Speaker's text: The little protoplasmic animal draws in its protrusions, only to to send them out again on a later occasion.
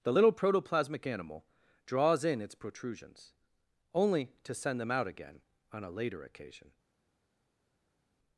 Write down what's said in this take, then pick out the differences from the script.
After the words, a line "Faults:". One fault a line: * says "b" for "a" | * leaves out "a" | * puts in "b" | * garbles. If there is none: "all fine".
The little protoplasmic animal draws in its protrusions, only to send them out again on a later occasion.
Faults:
* leaves out "to"